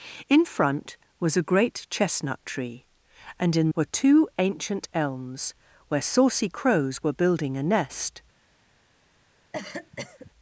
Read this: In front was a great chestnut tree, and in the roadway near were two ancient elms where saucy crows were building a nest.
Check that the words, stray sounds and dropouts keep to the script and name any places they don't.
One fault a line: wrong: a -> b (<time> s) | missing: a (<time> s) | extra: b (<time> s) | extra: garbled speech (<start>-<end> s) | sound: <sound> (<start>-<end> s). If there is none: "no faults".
missing: the roadway near (3.7 s)
sound: cough (9.5-10.3 s)